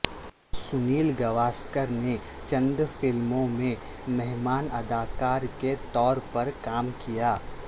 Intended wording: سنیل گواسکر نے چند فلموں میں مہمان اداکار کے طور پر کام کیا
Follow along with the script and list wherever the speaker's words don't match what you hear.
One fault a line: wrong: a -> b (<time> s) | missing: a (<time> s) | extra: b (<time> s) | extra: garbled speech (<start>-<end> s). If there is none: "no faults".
no faults